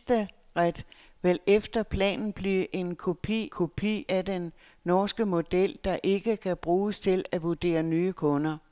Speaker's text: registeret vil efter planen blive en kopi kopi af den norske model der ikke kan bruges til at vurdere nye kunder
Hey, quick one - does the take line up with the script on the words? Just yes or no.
yes